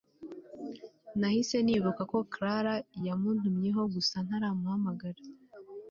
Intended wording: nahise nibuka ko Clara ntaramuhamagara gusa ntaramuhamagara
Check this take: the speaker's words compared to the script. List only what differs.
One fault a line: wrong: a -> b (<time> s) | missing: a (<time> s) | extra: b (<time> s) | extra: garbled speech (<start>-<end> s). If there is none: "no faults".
wrong: ntaramuhamagara -> yamuntumyeho (3.1 s)